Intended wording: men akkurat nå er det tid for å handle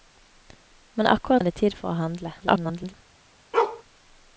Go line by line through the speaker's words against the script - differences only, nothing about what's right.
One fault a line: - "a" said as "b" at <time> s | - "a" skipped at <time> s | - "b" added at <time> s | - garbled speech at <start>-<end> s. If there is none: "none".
- "nå" skipped at 1.4 s
- garbled speech at 2.4-2.9 s